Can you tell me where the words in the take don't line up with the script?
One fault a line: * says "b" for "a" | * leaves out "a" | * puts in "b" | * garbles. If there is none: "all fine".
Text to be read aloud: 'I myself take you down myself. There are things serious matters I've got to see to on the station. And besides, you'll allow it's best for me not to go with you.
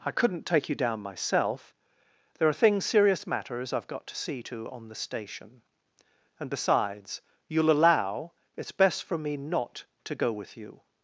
* says "couldn't" for "myself"